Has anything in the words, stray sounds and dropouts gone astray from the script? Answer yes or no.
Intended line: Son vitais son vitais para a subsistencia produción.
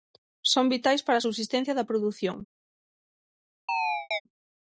yes